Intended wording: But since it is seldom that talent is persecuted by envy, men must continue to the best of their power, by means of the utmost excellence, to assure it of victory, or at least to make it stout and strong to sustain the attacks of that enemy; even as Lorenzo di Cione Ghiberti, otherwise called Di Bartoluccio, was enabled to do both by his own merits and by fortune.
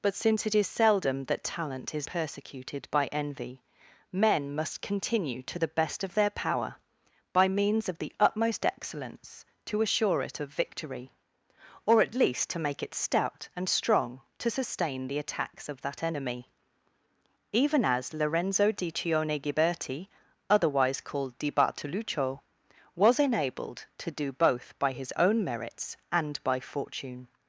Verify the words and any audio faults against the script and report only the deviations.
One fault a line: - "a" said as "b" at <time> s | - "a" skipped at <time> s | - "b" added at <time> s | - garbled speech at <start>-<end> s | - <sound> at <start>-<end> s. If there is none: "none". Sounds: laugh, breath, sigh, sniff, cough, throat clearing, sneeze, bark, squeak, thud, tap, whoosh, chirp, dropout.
none